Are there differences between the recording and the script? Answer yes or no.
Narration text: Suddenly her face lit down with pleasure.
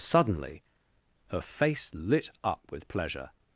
yes